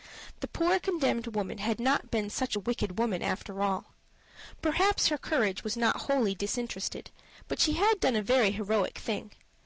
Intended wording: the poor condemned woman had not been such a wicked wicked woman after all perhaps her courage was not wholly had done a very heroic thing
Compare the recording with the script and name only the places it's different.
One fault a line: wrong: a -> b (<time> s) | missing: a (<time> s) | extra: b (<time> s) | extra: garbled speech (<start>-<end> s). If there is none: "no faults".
missing: wicked (3.0 s)
extra: disinterested but she (6.3 s)